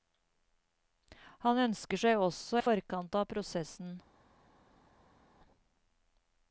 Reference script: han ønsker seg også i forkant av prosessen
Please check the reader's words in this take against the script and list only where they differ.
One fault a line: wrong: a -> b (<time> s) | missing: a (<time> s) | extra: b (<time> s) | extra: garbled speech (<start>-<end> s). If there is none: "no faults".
no faults